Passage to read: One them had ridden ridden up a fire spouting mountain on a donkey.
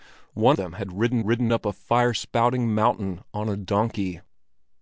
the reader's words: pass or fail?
pass